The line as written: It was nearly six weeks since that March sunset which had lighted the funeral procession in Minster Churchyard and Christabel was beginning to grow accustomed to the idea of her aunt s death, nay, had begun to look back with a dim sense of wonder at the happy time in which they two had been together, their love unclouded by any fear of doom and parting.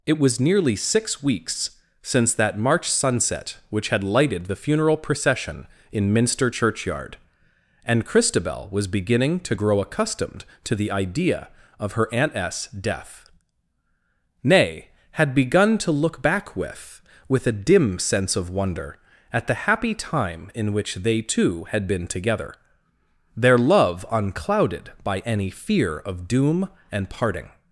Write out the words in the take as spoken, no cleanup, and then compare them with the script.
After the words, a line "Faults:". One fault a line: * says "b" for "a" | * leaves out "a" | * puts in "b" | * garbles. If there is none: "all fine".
It was nearly six weeks since that March sunset which had lighted the funeral procession in Minster Churchyard and Christabel was beginning to grow accustomed to the idea of her aunt s death, nay, had begun to look back with with a dim sense of wonder at the happy time in which they two had been together, their love unclouded by any fear of doom and parting.
Faults:
* puts in "with"